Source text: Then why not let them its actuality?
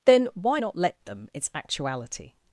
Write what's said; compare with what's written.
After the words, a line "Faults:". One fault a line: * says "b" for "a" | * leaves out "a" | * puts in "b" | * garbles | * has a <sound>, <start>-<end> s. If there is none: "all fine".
Then why not let them its actuality?
Faults:
all fine